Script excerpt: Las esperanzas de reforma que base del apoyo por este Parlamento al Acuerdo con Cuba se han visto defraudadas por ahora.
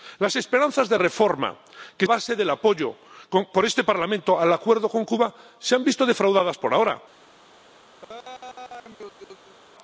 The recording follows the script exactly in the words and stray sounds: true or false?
false